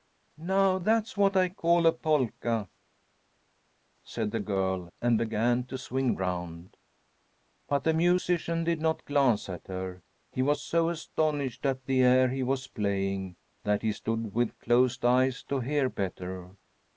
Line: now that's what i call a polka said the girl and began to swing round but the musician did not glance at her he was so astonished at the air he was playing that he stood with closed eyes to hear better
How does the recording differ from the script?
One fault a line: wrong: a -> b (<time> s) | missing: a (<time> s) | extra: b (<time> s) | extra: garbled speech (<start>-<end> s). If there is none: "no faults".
no faults